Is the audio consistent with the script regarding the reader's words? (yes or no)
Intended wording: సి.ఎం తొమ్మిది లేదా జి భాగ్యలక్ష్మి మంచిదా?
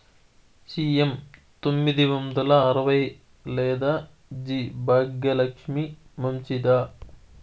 no